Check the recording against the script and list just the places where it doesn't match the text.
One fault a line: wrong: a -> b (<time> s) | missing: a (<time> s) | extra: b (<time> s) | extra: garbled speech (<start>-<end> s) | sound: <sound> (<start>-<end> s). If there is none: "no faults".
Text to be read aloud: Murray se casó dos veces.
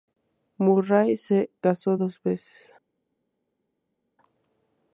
no faults